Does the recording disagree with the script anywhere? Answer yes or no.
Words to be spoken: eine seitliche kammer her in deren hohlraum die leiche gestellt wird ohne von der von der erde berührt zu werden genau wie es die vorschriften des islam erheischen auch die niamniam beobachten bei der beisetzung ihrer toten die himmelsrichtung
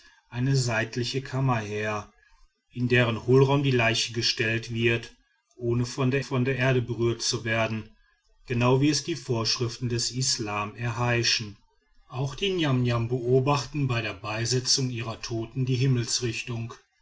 no